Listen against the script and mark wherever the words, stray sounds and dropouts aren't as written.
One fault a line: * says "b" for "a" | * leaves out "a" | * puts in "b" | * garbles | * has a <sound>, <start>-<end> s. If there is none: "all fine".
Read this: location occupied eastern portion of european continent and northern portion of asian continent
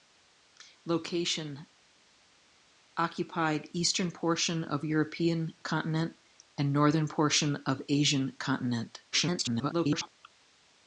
* garbles